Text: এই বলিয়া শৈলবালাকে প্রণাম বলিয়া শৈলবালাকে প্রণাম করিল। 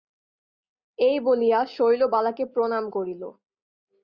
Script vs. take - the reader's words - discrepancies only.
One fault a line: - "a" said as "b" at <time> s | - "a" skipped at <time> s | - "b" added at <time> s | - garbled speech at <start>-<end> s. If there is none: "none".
- "বলিয়া শৈলবালাকে প্রণাম" skipped at 2.9 s